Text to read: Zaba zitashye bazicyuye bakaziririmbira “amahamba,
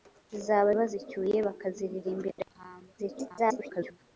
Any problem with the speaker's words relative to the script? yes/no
yes